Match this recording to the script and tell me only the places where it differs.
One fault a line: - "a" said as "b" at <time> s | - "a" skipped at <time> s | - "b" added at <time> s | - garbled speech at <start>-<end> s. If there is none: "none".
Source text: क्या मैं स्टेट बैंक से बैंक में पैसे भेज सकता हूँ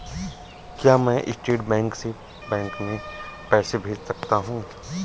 none